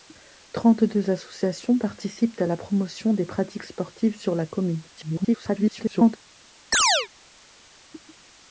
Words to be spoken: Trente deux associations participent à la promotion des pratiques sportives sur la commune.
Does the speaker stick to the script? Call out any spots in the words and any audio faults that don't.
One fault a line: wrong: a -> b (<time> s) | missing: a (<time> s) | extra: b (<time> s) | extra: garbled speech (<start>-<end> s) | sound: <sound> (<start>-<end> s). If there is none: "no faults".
extra: garbled speech (5.0-6.2 s)
sound: chirp (6.7-7.1 s)